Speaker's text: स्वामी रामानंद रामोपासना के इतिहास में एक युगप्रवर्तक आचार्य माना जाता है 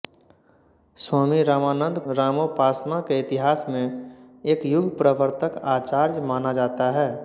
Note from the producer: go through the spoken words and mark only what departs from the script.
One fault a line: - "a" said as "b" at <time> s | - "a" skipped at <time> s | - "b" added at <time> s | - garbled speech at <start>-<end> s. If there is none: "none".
none